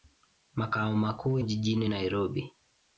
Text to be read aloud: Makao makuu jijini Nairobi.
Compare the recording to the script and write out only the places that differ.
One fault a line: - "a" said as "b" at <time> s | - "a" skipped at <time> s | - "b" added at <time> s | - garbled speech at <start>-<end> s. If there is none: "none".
none